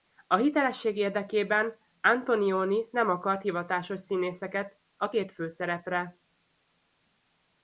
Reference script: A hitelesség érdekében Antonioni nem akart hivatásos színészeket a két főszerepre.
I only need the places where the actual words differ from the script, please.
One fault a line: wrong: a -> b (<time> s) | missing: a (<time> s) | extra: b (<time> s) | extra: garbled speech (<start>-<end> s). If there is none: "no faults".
no faults